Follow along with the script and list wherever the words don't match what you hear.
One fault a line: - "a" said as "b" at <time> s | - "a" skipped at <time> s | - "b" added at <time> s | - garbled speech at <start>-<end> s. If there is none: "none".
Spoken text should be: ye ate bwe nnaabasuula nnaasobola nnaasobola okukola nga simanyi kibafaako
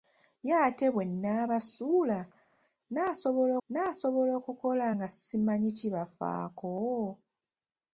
none